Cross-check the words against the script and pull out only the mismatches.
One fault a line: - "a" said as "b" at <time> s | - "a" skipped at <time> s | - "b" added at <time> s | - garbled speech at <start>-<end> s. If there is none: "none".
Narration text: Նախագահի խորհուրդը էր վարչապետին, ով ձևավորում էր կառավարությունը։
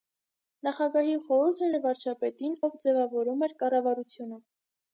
none